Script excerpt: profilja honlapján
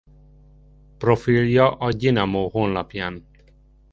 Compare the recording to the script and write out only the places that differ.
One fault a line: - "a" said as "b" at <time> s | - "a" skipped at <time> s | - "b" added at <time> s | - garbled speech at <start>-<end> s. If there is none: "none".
- "a gyinamo" added at 1.8 s